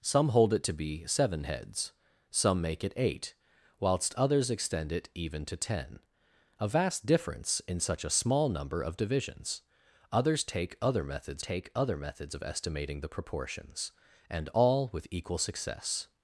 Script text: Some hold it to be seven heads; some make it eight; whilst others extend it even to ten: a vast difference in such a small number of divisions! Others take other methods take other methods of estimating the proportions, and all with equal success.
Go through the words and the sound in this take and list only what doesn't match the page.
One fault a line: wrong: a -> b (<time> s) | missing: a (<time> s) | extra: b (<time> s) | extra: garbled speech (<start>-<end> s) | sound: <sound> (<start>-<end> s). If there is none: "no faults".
no faults